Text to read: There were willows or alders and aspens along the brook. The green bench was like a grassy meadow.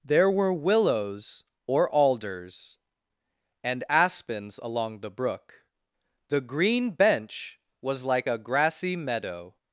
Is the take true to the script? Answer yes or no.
yes